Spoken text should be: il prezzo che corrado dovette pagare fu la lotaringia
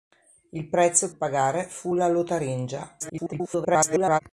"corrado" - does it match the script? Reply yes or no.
no